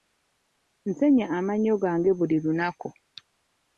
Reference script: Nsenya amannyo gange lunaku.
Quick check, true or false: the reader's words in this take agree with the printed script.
false